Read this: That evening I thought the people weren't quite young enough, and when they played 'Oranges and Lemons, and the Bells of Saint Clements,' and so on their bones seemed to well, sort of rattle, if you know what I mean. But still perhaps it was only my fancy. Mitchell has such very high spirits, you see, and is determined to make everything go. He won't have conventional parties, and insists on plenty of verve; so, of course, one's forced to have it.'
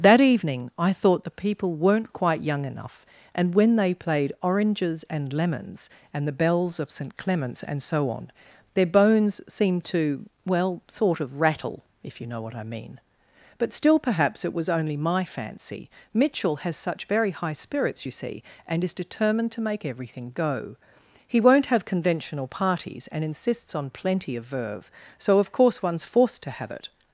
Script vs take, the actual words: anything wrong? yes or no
no